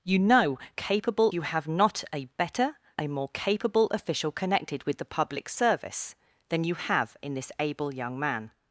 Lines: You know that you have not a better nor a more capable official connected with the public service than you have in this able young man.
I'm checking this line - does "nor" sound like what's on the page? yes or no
no